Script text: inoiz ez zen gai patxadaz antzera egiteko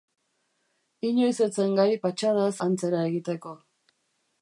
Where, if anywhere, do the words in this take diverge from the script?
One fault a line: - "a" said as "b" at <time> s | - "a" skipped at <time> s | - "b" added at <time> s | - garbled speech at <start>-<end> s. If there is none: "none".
none